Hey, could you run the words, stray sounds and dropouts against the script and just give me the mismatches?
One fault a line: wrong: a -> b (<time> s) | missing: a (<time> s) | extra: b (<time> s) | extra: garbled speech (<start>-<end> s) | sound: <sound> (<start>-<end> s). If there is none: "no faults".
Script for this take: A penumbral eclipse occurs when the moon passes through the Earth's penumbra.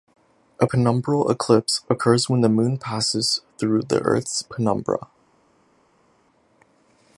no faults